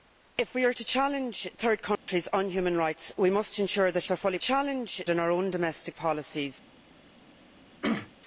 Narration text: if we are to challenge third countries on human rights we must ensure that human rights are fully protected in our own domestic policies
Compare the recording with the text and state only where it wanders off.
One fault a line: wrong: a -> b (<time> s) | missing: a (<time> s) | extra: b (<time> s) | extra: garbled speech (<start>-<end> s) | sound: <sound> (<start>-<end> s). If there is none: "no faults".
sound: dropout (2.0-2.1 s)
missing: human rights (4.0 s)
wrong: protected -> challenge (4.4 s)
sound: throat clearing (7.8-8.1 s)